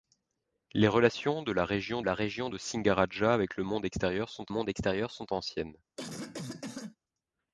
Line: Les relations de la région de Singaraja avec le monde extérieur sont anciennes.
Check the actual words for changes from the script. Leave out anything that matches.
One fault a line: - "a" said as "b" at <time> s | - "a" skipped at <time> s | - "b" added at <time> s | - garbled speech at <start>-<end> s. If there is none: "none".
- "la région" added at 2.0 s
- "monde extérieur sont" added at 4.5 s